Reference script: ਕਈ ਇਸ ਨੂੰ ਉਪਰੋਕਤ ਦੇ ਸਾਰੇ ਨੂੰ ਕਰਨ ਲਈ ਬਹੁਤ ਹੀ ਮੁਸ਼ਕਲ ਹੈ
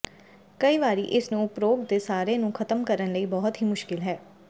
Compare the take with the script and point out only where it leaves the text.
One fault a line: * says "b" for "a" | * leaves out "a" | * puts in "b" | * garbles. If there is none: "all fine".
* puts in "ਵਾਰੀ"
* puts in "ਖ਼ਤਮ"